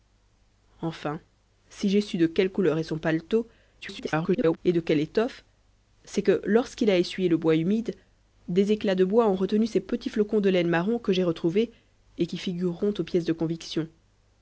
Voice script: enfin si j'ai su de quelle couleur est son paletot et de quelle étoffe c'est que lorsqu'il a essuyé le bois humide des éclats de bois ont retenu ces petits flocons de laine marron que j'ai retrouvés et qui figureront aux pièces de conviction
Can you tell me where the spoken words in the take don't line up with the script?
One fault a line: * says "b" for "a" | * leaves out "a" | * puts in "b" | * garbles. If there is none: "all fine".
* garbles